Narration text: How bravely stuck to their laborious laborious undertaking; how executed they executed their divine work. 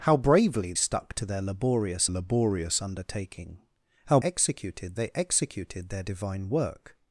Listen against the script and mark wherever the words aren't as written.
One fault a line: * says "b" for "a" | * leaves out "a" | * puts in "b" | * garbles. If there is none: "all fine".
all fine